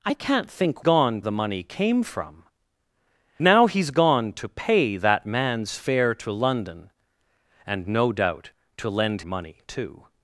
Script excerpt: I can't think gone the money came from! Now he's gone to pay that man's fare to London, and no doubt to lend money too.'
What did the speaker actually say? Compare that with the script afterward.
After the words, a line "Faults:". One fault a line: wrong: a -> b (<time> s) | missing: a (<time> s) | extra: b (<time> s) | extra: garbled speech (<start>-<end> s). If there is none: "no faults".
I can't think gone the money came from! Now he's gone to pay that man's fare to London, and no doubt to lend money too.'
Faults:
no faults